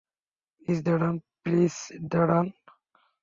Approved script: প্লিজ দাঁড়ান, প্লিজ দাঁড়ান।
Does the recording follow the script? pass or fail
pass